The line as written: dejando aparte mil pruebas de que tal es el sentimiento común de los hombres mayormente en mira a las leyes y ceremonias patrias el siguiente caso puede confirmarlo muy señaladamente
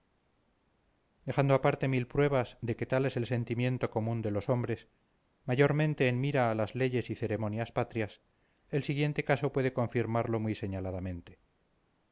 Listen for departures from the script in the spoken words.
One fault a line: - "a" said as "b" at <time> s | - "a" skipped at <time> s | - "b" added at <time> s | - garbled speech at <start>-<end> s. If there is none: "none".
none